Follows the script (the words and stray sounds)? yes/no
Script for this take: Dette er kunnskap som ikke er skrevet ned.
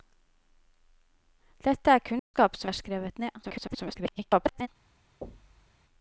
no